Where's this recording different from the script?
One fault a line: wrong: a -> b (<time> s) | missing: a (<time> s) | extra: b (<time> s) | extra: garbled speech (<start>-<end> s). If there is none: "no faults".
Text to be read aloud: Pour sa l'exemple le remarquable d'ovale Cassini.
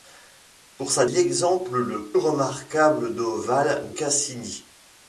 no faults